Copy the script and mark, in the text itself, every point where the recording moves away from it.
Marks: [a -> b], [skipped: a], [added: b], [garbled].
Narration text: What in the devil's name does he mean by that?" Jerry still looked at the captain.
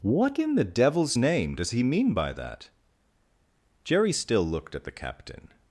What in the devil's name does he mean by that?" Jerry still looked at the captain.